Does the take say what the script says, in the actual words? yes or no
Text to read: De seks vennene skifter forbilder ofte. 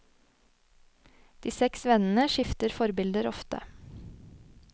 yes